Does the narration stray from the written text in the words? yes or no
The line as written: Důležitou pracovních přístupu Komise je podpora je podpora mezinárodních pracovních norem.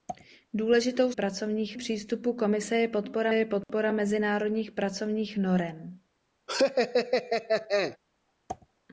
no